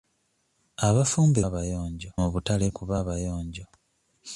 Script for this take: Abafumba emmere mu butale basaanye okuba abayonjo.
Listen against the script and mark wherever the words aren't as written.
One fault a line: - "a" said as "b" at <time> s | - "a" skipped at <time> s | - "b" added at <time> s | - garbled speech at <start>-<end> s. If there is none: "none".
- "emmere" said as "abayonjo" at 1.5 s
- "basaanye" skipped at 2.6 s